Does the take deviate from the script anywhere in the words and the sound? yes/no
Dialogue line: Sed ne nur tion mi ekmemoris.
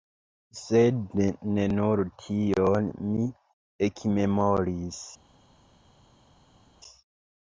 no